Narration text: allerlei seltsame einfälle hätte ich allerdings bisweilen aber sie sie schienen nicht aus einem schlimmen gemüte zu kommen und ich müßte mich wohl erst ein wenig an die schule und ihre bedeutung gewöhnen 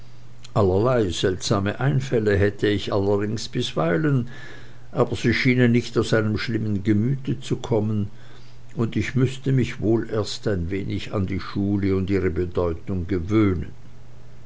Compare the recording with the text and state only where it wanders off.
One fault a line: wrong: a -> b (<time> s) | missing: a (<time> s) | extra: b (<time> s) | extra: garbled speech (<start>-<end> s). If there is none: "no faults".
missing: sie (5.3 s)